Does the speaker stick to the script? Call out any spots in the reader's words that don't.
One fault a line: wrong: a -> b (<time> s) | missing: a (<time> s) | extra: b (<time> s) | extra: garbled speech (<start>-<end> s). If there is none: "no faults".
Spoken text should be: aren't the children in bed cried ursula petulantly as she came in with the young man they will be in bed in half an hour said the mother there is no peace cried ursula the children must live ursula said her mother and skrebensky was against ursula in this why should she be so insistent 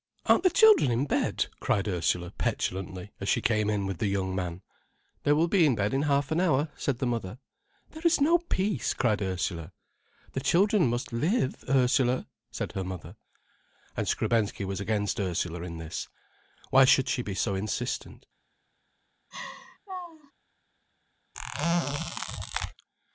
no faults